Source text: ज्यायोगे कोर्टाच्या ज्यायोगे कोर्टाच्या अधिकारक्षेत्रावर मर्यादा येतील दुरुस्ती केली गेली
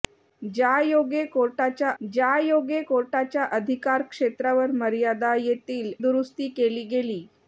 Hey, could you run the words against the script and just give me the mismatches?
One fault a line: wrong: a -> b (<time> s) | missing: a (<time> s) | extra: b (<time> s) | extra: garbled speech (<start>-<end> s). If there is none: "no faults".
no faults